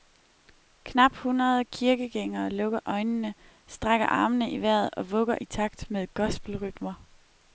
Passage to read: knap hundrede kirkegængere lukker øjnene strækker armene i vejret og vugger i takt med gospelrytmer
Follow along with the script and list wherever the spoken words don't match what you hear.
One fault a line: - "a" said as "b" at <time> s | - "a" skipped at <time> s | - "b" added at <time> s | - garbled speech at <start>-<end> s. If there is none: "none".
none